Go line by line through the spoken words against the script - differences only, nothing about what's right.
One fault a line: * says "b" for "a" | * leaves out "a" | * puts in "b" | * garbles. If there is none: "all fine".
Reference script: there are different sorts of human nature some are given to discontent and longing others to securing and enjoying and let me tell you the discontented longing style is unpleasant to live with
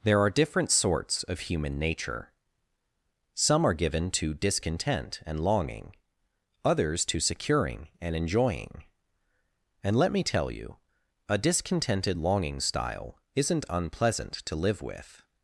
* says "a" for "the"
* says "isn't" for "is"